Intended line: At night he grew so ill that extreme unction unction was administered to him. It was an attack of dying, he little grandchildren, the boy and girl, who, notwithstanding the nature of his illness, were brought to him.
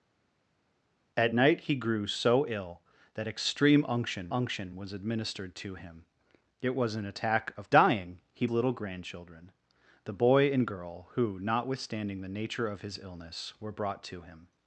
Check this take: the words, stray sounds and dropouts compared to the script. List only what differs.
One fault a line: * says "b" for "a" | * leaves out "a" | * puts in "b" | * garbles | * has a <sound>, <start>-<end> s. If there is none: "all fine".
all fine